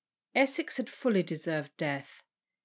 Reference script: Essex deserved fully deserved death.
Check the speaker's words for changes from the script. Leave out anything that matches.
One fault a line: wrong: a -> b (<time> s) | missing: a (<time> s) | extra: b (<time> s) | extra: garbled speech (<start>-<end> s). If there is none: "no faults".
wrong: deserved -> had (0.8 s)